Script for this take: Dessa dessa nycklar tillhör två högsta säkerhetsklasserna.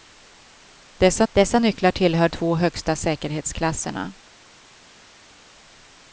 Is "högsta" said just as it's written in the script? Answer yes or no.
yes